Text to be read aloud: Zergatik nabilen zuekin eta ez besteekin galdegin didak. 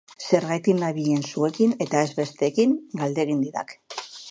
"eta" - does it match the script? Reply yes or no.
yes